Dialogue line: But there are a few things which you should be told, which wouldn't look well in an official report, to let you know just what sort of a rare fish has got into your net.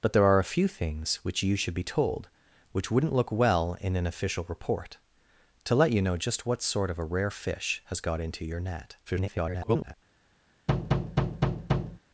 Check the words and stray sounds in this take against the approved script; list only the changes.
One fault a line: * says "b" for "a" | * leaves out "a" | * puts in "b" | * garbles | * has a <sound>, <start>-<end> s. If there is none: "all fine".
* garbles
* has a thud, 10.7-12.0 s